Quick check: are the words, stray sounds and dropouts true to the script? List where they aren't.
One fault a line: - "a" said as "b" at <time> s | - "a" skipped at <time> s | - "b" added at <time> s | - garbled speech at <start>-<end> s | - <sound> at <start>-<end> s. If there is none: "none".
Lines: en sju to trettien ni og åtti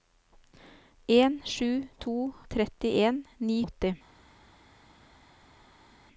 none